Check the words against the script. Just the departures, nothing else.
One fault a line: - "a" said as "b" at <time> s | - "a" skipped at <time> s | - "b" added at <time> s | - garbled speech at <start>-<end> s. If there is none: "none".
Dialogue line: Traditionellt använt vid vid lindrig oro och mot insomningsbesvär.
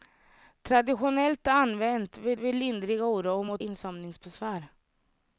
none